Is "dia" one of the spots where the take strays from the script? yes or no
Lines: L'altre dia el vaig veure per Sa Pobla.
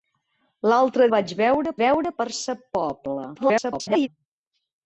yes